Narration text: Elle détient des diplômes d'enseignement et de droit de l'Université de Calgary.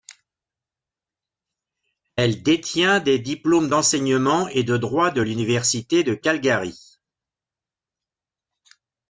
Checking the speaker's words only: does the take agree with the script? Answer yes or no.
yes